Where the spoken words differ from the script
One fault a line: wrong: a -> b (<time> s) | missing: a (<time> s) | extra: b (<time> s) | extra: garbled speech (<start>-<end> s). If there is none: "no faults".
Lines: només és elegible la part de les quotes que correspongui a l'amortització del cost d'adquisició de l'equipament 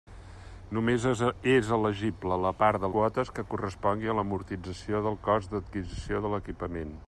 missing: les (2.9 s)